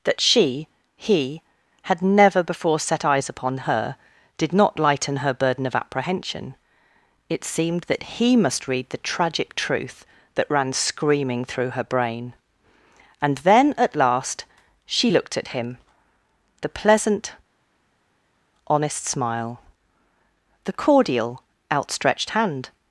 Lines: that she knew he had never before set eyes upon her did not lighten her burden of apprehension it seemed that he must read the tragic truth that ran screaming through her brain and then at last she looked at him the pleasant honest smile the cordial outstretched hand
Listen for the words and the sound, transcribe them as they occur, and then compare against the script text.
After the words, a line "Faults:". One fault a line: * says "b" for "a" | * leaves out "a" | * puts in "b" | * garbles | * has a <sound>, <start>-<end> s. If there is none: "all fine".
that she he had never before set eyes upon her did not lighten her burden of apprehension it seemed that he must read the tragic truth that ran screaming through her brain and then at last she looked at him the pleasant honest smile the cordial outstretched hand
Faults:
* leaves out "knew"